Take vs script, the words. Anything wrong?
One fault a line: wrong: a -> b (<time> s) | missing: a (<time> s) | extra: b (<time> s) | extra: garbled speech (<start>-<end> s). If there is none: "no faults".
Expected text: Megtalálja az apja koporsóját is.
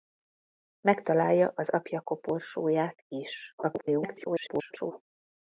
extra: garbled speech (3.6-4.9 s)